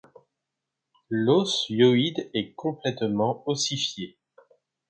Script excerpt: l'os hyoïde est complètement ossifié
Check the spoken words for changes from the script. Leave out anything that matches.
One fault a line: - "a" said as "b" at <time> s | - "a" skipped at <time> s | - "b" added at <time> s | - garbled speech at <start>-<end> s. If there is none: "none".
none